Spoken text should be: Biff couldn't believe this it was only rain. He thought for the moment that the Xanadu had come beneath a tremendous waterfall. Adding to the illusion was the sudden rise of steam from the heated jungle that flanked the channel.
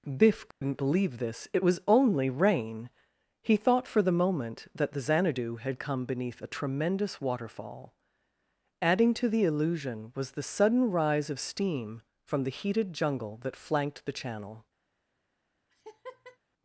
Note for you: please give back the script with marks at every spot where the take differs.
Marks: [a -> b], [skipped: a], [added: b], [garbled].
Biff couldn't believe this it was only rain. He thought for the moment that the Xanadu had come beneath a tremendous waterfall. Adding to the illusion was the sudden rise of steam from the heated jungle that flanked the channel.